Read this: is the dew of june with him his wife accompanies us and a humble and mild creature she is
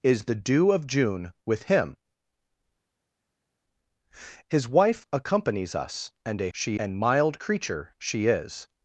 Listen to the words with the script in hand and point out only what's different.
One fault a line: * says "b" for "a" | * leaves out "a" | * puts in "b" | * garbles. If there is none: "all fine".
* says "she" for "humble"